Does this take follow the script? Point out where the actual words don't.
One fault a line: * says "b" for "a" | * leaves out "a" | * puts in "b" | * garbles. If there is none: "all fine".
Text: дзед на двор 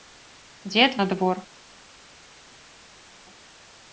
all fine